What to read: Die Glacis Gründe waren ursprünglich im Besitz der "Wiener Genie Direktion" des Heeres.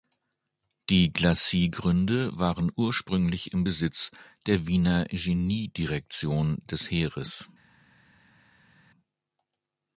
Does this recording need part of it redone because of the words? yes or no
no